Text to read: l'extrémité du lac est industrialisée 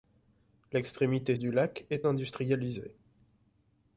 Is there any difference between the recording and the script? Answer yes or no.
no